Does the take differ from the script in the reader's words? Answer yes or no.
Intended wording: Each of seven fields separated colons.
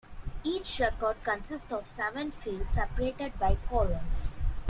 yes